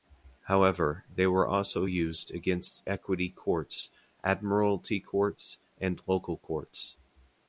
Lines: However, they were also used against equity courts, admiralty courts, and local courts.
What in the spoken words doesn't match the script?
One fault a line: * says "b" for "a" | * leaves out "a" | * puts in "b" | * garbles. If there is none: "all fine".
all fine